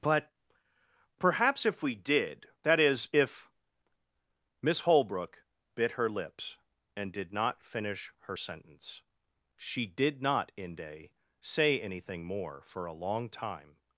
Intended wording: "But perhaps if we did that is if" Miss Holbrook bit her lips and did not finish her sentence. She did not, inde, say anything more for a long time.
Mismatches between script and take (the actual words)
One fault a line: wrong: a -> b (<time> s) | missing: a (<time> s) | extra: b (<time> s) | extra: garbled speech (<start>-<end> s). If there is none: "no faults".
no faults